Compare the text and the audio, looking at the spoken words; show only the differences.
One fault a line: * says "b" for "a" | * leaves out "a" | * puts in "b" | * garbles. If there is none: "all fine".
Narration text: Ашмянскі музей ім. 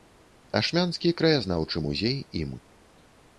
* puts in "краязнаўчы"